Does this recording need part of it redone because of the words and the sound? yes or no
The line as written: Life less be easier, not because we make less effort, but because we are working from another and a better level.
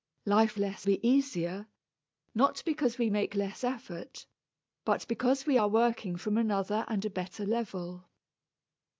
no